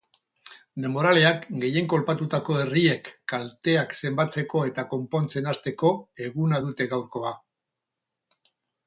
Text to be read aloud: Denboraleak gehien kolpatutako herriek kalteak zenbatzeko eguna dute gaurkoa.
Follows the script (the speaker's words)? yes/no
no